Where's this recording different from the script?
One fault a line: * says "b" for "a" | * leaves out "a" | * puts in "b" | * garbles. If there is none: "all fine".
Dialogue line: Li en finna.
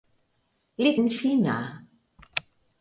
all fine